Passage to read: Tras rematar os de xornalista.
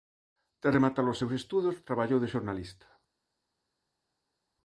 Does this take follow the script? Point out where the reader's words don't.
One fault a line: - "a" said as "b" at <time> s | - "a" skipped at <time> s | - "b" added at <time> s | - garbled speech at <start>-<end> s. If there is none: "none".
- "seus estudos traballou" added at 1.2 s